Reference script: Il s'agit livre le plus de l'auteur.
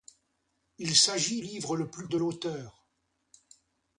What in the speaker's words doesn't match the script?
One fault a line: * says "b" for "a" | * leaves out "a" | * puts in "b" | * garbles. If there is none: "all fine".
all fine